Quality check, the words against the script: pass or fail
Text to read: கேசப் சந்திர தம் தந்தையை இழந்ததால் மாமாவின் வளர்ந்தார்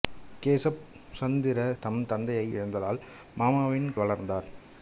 pass